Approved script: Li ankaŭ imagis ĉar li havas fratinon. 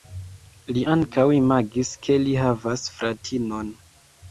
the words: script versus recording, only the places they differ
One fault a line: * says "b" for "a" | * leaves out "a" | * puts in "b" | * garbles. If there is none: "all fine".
* says "ke" for "ĉar"